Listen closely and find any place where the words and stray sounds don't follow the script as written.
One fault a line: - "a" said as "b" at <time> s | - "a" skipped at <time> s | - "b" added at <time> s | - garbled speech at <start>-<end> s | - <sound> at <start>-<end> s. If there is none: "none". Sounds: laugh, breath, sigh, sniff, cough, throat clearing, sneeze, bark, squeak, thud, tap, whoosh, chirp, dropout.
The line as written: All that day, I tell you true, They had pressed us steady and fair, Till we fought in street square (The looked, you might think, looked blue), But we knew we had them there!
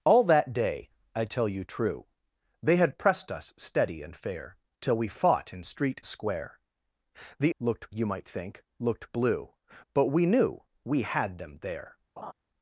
- laugh at 12.2-12.3 s